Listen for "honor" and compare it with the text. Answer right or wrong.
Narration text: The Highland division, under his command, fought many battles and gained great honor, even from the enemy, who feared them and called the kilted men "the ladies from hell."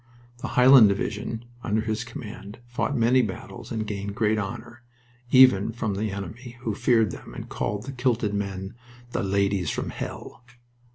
right